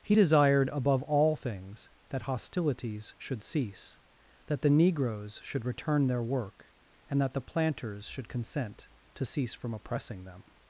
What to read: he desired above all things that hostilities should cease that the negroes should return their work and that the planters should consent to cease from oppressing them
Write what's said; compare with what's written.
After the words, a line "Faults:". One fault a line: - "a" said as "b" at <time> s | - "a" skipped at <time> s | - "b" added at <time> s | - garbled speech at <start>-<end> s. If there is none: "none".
he desired above all things that hostilities should cease that the negroes should return their work and that the planters should consent to cease from oppressing them
Faults:
none